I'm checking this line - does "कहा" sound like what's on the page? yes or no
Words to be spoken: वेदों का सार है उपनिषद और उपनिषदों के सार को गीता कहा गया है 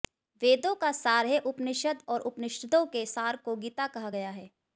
yes